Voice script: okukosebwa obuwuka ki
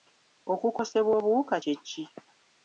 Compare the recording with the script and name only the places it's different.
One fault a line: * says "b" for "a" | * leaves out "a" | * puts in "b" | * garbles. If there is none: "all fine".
* puts in "kye"